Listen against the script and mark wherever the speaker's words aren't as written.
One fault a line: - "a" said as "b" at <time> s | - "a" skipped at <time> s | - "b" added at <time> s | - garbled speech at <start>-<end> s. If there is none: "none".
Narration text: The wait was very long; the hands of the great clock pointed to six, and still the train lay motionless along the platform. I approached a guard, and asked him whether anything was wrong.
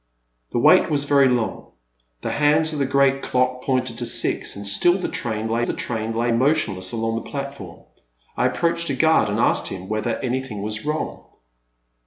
- "the train lay" added at 5.6 s